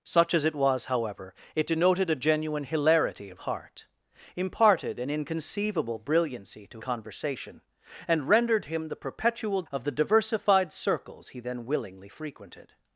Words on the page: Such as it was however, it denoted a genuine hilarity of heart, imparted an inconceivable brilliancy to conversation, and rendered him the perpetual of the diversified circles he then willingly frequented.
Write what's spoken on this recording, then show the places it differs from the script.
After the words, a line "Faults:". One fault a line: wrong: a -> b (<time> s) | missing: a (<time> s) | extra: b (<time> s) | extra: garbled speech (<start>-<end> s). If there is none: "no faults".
Such as it was however, it denoted a genuine hilarity of heart, imparted an inconceivable brilliancy to conversation, and rendered him the perpetual of the diversified circles he then willingly frequented.
Faults:
no faults